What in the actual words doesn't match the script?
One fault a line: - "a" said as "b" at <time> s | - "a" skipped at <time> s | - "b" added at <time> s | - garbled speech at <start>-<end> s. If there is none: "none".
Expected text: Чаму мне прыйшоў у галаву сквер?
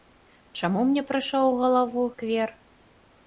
none